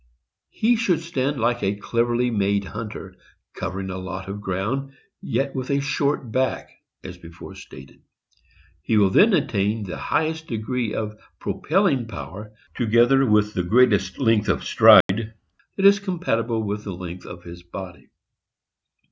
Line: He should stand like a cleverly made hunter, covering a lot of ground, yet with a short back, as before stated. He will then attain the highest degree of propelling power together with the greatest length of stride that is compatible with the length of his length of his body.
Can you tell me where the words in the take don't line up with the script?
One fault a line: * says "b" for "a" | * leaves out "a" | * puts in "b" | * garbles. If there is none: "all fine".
* leaves out "length of his"